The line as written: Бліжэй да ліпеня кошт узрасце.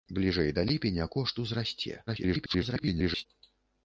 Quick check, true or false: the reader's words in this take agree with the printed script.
false